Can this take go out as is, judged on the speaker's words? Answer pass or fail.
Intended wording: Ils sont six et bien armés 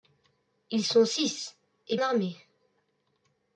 fail